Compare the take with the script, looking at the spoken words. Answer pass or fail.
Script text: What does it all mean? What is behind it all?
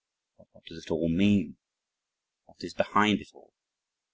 fail